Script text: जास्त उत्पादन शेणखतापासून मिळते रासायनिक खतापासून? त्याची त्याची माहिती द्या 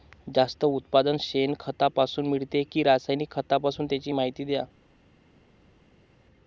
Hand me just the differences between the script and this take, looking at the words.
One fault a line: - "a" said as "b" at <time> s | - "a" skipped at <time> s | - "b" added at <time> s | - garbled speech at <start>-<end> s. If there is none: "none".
- "कि" added at 2.7 s
- "त्याची" skipped at 4.1 s